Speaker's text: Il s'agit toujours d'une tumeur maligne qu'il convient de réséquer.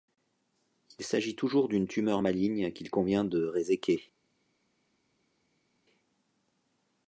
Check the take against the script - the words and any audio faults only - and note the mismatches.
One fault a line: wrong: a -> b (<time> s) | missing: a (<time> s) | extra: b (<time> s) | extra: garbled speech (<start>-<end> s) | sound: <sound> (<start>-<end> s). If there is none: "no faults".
no faults